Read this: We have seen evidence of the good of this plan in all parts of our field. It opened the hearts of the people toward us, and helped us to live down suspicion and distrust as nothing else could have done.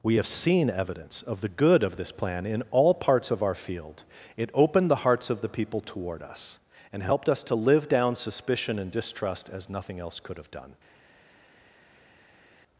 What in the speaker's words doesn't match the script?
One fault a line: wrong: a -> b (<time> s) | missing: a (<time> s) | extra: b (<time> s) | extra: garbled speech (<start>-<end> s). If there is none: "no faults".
no faults